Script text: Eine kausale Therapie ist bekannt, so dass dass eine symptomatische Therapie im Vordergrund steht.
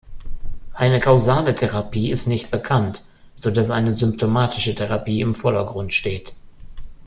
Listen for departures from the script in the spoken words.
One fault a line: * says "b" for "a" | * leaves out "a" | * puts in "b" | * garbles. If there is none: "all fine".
* puts in "nicht"
* leaves out "dass"